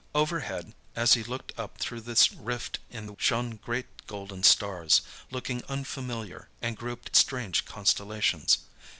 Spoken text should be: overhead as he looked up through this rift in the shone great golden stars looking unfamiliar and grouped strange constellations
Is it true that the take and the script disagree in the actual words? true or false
false